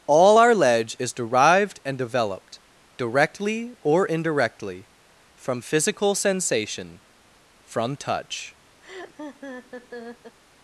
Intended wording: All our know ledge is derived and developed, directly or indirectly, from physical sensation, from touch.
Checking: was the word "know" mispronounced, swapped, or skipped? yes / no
yes